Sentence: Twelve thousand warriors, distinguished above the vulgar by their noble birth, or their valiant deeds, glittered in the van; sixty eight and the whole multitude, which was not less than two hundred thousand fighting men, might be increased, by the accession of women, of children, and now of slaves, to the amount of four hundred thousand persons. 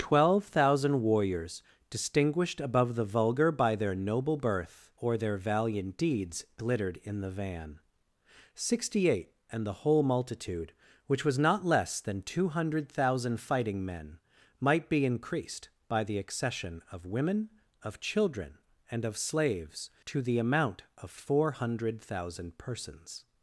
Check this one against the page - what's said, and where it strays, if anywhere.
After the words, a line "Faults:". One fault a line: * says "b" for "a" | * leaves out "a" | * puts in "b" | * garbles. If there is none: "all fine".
Twelve thousand warriors, distinguished above the vulgar by their noble birth, or their valiant deeds, glittered in the van; sixty eight and the whole multitude, which was not less than two hundred thousand fighting men, might be increased, by the accession of women, of children, and of slaves, to the amount of four hundred thousand persons.
Faults:
* leaves out "now"